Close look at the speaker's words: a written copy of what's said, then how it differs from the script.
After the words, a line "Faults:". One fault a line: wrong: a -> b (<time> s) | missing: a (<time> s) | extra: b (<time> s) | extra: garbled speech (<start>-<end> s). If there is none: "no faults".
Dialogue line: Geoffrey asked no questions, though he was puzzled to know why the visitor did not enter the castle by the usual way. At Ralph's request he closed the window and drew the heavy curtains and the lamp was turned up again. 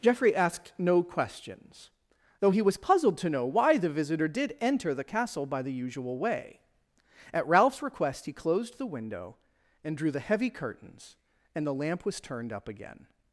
Geoffrey asked no questions, though he was puzzled to know why the visitor did enter the castle by the usual way. At Ralph's request he closed the window and drew the heavy curtains and the lamp was turned up again.
Faults:
missing: not (4.6 s)